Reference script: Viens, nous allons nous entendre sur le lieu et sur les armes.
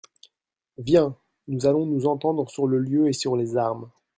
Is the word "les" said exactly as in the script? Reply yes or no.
yes